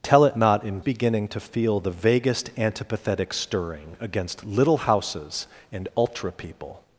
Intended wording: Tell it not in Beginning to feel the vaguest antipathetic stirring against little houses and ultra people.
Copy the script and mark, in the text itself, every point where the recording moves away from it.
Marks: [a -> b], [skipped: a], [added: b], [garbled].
Tell it not in Beginning to feel the vaguest antipathetic stirring against little houses and ultra people.